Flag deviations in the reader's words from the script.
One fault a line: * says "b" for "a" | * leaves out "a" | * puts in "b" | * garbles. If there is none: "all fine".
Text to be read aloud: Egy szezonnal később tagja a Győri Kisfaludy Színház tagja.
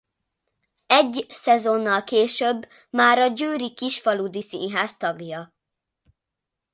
* says "már" for "tagja"